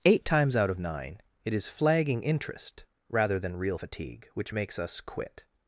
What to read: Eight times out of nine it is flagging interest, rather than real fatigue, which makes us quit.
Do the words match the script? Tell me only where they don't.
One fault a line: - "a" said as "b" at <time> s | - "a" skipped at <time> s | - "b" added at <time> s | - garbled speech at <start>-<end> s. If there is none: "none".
none